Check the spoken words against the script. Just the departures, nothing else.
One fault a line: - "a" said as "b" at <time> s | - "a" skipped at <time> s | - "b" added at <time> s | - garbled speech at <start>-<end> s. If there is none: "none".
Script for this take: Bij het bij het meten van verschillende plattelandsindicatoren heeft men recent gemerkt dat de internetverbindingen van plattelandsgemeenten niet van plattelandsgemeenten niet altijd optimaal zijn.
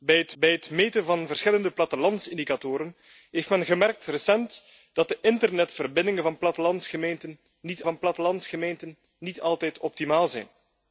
none